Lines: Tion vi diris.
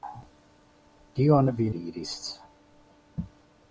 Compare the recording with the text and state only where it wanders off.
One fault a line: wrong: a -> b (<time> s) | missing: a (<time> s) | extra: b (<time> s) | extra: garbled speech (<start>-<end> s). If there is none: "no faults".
no faults